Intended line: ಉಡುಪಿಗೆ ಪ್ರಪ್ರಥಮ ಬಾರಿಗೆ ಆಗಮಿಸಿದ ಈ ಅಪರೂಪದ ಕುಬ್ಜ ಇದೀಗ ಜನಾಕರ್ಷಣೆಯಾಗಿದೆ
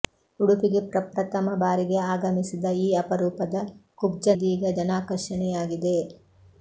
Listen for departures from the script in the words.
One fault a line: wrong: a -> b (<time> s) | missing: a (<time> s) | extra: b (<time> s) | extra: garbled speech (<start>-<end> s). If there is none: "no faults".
no faults